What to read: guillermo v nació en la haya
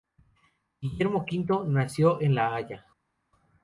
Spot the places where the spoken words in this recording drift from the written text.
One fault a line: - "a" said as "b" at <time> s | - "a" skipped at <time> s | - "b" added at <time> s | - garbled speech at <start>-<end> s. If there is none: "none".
none